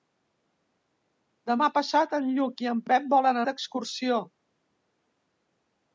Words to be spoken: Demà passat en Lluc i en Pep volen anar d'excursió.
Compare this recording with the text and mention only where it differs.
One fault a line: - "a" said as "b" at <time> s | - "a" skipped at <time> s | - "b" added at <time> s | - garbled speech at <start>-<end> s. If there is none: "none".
- "anar" skipped at 3.4 s